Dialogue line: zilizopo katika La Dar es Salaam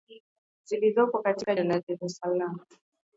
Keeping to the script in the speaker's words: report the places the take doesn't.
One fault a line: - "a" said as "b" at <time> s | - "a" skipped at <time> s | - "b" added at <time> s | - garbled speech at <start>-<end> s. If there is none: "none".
none